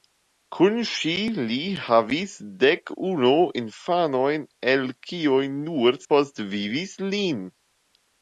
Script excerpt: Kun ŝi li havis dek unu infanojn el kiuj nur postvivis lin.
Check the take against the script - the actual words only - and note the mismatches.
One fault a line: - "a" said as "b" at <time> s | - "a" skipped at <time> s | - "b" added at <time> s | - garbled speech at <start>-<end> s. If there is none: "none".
none